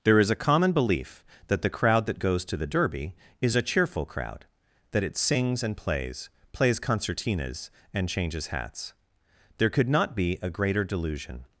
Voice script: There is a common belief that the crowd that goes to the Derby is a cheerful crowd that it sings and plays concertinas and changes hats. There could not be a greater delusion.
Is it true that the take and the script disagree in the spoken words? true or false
true